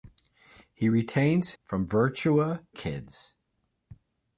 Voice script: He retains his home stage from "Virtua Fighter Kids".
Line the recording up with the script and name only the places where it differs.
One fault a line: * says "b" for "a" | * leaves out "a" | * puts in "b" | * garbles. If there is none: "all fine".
* leaves out "his home stage"
* leaves out "Fighter"